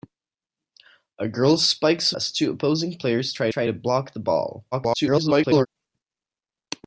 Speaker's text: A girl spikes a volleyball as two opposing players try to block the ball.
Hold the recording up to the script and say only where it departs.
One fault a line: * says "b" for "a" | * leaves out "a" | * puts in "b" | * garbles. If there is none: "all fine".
* leaves out "volleyball"
* puts in "try"
* garbles